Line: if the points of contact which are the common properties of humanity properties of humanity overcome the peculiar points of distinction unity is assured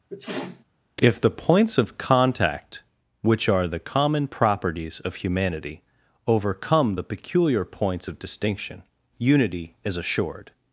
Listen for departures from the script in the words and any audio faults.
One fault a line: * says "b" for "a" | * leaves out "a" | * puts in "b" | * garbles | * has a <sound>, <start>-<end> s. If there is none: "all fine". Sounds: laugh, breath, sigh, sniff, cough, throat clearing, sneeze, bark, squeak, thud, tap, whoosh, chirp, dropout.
* has a sneeze, 0.1-0.6 s
* leaves out "properties of humanity"